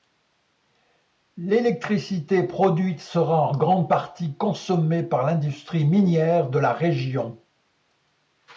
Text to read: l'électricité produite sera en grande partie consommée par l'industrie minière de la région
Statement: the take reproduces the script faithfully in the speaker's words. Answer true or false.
true